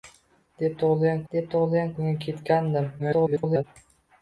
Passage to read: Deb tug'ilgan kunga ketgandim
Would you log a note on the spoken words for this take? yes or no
yes